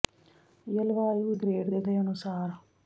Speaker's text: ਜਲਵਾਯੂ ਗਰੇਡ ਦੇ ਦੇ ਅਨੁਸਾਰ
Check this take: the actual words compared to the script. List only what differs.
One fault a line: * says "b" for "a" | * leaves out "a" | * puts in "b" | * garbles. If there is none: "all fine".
all fine